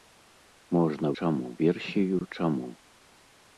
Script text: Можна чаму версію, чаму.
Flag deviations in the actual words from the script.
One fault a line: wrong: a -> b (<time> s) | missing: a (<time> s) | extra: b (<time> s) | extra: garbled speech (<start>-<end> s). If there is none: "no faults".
no faults